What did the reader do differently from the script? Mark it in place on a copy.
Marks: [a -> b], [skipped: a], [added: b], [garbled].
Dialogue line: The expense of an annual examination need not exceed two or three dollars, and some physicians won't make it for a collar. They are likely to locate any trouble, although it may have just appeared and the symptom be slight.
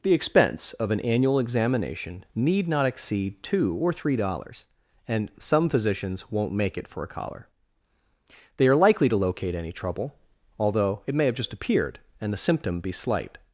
The expense of an annual examination need not exceed two or three dollars, and some physicians won't make it for a collar. They are likely to locate any trouble, although it may have just appeared and the symptom be slight.